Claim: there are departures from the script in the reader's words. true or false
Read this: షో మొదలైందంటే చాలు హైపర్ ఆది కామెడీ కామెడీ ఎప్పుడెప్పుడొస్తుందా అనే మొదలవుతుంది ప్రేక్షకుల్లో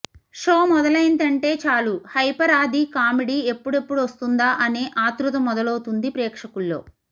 true